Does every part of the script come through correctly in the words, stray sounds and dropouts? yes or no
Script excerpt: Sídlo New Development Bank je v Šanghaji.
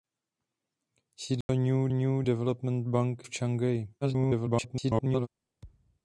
no